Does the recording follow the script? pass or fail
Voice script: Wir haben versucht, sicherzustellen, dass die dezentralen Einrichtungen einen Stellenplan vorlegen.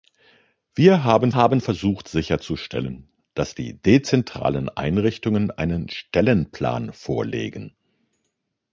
fail